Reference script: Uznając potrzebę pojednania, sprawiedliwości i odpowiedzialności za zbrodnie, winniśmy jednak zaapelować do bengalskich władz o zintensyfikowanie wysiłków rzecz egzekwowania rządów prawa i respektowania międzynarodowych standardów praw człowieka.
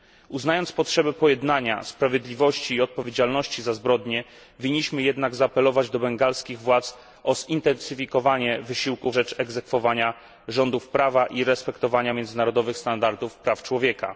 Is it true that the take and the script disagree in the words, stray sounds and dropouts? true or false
false